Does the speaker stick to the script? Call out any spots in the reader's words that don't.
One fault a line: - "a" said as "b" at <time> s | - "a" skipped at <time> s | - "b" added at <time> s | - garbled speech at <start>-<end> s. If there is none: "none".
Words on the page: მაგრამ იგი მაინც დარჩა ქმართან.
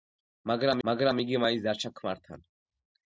- "მაგრამ" added at 0.9 s